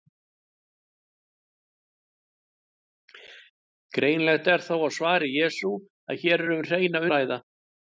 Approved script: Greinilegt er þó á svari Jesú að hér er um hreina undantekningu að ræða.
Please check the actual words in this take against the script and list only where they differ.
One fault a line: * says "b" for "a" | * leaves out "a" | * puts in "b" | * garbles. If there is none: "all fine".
* leaves out "undantekningu"